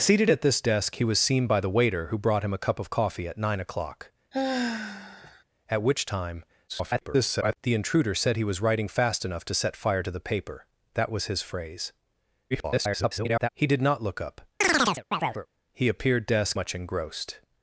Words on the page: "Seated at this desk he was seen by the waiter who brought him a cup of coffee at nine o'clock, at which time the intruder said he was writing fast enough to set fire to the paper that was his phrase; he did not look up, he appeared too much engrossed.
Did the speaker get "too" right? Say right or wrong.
wrong